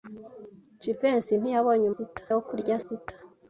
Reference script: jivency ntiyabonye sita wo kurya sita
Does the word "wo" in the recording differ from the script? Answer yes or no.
no